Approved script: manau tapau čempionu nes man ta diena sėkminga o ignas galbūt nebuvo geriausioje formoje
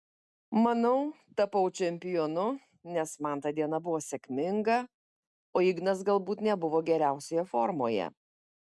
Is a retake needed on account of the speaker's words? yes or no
yes